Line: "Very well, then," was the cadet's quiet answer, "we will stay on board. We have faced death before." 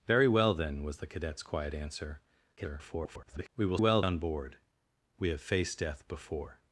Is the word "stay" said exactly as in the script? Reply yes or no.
no